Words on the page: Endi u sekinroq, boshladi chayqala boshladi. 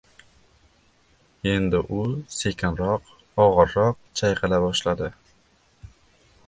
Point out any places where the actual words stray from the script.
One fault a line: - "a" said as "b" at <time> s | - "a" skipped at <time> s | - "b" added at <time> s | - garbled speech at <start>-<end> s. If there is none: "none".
- "boshladi" said as "og‘irroq" at 3.5 s